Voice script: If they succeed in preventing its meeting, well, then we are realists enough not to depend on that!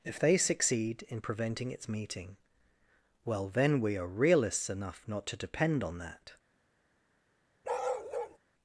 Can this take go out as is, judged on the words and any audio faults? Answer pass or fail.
fail